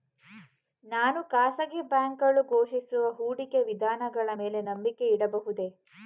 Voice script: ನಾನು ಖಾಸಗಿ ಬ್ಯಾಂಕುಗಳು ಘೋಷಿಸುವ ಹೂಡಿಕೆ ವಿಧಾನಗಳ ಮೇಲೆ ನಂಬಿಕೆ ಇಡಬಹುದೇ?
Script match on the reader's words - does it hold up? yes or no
yes